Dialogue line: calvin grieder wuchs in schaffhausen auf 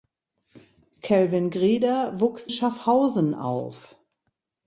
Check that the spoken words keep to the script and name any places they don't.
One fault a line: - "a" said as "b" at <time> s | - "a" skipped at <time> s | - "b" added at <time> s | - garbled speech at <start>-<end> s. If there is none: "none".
- "in" skipped at 2.5 s